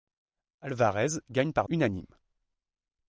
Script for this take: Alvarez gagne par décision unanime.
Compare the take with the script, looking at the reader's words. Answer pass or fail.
fail